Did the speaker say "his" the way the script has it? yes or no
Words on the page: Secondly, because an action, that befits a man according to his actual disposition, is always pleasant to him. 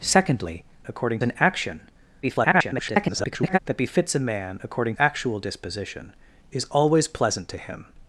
no